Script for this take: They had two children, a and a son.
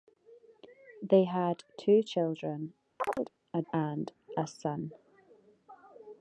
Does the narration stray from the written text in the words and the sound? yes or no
yes